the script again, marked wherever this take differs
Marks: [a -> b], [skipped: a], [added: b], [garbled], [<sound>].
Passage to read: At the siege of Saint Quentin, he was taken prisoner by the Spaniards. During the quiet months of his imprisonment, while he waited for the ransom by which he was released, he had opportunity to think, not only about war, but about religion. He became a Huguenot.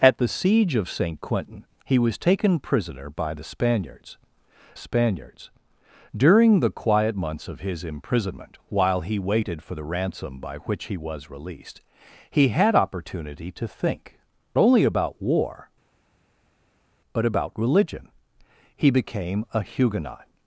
At the siege of Saint Quentin, he was taken prisoner by the Spaniards. [added: Spaniards] During the quiet months of his imprisonment, while he waited for the ransom by which he was released, he had opportunity to think, [skipped: not] only about war, but about religion. He became a Huguenot.